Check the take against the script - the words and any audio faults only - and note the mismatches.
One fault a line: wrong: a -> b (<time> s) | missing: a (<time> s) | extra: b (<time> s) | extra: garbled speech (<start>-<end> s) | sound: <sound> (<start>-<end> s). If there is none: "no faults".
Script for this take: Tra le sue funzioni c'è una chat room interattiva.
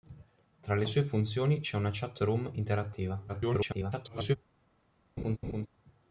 extra: garbled speech (3.3-4.4 s)
sound: laugh (5.2-5.7 s)